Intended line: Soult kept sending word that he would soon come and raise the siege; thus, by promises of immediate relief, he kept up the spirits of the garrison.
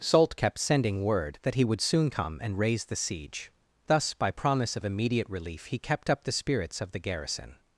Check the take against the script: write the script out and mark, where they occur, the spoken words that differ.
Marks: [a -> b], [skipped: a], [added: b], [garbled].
Soult kept sending word that he would soon come and raise the siege; thus, by [promises -> promise] of immediate relief, he kept up the spirits of the garrison.